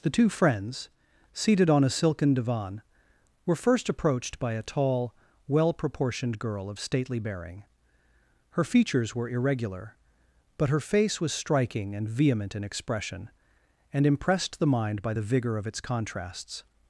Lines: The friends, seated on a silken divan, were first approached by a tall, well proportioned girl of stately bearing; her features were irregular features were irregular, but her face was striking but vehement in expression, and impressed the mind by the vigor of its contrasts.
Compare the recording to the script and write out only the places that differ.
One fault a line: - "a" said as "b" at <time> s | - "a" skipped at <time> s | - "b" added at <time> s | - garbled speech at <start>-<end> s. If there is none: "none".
- "two" added at 0.1 s
- "features were irregular" skipped at 9.9 s
- "but" said as "and" at 12.0 s